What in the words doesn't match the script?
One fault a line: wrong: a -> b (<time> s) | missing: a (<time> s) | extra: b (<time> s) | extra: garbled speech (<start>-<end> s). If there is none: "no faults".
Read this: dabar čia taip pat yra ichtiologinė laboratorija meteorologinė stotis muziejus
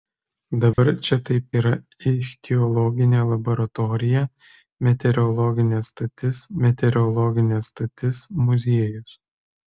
missing: pat (1.4 s)
extra: meteorologinė stotis (6.7 s)